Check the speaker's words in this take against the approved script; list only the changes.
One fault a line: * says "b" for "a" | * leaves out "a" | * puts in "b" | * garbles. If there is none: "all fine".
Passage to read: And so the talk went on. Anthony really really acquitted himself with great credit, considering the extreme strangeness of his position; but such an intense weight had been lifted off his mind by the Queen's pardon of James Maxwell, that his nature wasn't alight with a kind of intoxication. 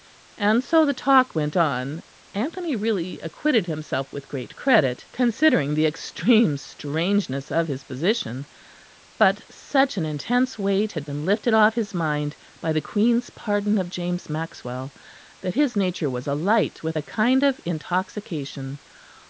* leaves out "really"
* says "was" for "wasn't"